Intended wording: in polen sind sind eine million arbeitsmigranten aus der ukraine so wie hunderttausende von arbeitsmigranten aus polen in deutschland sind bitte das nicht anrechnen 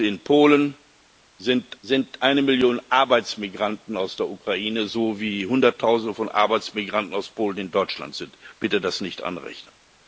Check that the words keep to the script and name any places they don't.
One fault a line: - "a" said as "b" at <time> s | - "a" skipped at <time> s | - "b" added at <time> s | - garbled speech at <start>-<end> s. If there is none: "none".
none